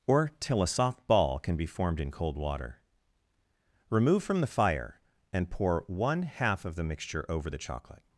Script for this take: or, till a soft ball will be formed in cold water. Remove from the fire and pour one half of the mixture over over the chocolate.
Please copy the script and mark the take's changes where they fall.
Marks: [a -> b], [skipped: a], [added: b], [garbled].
or, till a soft ball [will -> can] be formed in cold water. Remove from the fire and pour one half of the mixture over [skipped: over] the chocolate.